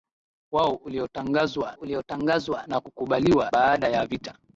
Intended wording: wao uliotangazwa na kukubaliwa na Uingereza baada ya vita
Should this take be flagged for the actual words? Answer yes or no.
yes